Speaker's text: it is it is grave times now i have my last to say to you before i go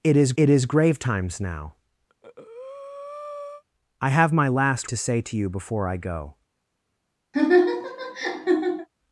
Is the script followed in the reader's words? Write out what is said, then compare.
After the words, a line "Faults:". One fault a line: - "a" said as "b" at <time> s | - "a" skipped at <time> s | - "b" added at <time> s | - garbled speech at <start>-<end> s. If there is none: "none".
it is it is grave times now i have my last to say to you before i go
Faults:
none